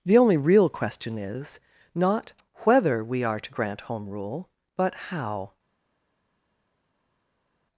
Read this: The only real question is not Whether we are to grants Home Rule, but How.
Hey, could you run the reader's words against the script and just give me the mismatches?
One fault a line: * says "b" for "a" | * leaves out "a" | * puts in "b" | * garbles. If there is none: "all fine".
* says "grant" for "grants"